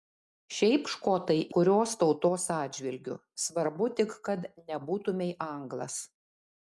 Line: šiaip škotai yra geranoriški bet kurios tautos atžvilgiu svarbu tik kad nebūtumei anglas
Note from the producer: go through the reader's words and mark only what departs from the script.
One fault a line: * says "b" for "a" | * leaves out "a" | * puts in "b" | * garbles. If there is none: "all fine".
* leaves out "yra geranoriški bet"